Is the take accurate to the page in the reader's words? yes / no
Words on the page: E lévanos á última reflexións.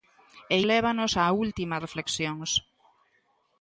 yes